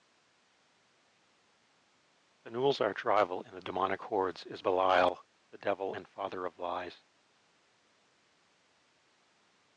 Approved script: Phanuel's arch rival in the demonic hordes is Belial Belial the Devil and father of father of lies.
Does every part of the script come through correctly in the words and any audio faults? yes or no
no